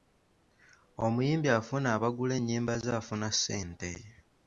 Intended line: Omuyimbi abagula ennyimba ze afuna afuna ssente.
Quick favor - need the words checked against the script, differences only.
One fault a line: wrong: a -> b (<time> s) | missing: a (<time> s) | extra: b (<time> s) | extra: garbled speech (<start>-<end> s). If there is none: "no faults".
extra: afuna (1.6 s)
missing: afuna (3.3 s)